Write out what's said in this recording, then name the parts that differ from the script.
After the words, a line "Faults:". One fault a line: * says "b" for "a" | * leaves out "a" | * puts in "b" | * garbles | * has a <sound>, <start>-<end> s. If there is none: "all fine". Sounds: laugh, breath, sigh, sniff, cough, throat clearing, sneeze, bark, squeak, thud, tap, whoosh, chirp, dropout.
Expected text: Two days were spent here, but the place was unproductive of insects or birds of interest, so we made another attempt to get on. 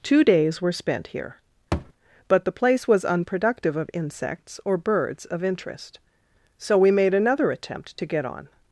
Two days were spent here, but the place was unproductive of insects or birds of interest, so we made another attempt to get on.
Faults:
* has a thud, 1.7-1.9 s